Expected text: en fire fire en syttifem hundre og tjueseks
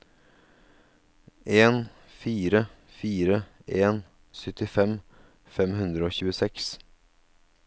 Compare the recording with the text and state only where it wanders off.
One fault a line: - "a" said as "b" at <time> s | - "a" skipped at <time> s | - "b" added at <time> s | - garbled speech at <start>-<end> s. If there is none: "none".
- "fem" added at 5.6 s